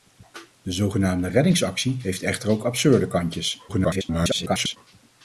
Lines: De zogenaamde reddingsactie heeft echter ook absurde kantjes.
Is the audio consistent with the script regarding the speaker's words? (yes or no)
no